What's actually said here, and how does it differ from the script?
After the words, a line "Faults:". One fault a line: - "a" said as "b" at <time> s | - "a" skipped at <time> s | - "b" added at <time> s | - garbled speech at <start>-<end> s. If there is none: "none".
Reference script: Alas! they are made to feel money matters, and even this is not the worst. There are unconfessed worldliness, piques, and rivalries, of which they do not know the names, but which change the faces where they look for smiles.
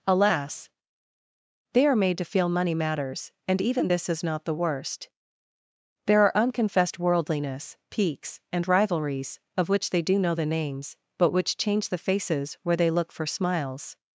Alas! they are made to feel money matters, and even this is not the worst. There are unconfessed worldliness, piques, and rivalries, of which they do know the names, but which change the faces where they look for smiles.
Faults:
- "not" skipped at 10.2 s